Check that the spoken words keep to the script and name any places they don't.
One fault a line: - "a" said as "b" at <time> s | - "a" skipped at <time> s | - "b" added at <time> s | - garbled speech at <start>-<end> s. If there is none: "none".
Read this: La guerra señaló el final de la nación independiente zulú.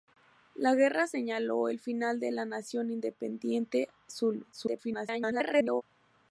- garbled speech at 4.5-5.8 s